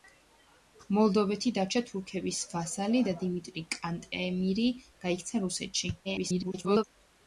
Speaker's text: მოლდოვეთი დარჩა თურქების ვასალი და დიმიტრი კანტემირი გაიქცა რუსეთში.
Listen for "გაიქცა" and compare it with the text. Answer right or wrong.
right